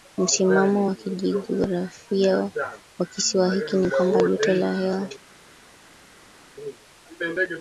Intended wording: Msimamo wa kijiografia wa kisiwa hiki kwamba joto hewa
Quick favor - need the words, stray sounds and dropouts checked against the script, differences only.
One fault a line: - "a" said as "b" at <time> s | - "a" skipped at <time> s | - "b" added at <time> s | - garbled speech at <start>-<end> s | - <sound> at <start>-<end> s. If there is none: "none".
- "ni" added at 3.8 s
- "la" added at 4.5 s